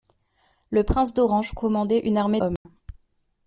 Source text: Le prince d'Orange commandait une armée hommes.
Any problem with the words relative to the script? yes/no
no